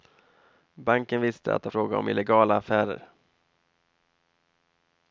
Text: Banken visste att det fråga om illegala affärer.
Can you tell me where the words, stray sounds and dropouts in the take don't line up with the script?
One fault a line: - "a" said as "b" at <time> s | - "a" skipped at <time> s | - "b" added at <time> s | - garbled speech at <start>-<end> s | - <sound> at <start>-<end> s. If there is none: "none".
none